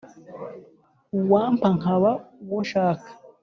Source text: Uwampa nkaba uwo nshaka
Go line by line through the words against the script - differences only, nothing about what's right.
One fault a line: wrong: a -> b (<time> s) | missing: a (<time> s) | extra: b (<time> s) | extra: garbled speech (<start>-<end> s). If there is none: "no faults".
no faults